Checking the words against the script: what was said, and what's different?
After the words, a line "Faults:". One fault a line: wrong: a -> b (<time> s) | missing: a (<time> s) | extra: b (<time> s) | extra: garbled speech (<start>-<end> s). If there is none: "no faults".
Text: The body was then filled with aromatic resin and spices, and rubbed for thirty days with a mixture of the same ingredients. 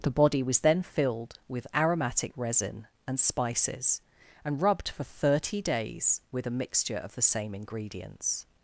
The body was then filled with aromatic resin and spices, and rubbed for thirty days with a mixture of the same ingredients.
Faults:
no faults